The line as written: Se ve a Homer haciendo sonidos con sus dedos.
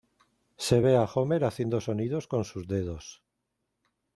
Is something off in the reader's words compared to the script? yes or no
no